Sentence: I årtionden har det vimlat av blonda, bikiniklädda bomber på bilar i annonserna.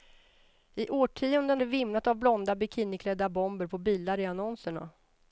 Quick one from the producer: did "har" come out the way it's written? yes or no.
no